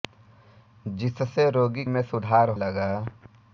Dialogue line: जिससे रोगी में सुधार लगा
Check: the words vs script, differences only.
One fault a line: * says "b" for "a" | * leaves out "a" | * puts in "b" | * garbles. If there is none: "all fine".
all fine